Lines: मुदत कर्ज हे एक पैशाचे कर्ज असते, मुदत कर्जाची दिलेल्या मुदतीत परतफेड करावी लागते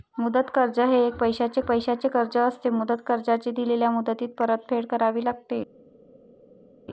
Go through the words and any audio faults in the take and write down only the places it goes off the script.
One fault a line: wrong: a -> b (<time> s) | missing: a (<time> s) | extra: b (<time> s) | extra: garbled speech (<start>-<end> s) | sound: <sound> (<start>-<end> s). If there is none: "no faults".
extra: पैशाचे (1.6 s)